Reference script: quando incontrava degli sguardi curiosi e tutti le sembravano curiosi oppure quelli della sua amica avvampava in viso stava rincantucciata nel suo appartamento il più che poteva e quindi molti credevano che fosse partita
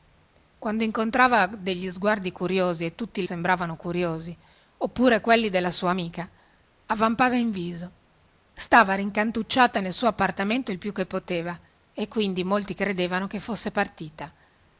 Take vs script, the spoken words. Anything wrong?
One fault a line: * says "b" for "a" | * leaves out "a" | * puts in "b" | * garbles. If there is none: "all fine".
* leaves out "le"